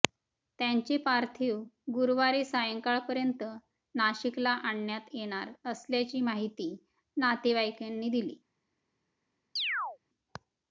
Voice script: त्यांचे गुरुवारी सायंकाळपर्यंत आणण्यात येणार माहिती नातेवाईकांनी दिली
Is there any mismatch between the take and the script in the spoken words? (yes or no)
yes